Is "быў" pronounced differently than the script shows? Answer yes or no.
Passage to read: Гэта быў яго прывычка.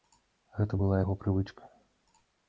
yes